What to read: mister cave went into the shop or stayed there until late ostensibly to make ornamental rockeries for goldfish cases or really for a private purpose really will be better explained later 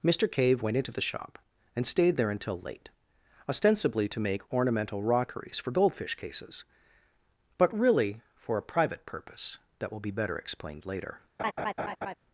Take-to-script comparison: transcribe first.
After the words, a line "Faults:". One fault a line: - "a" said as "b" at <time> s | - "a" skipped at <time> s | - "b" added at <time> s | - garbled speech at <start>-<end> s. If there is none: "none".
mister cave went into the shop and stayed there until late ostensibly to make ornamental rockeries for goldfish cases but really for a private purpose that will be better explained later
Faults:
- "or" said as "and" at 1.8 s
- "or" said as "but" at 7.6 s
- "really" said as "that" at 9.8 s